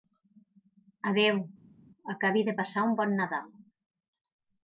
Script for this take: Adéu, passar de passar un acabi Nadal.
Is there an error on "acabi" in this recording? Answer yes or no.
yes